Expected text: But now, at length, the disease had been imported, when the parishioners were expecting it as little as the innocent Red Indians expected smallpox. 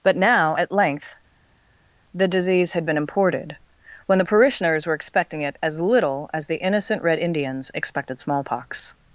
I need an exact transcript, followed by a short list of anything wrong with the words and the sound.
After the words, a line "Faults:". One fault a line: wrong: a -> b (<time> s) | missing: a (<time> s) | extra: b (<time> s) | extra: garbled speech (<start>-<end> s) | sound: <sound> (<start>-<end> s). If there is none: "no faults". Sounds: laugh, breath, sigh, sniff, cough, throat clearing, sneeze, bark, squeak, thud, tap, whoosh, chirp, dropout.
But now, at length, the disease had been imported, when the parishioners were expecting it as little as the innocent Red Indians expected smallpox.
Faults:
no faults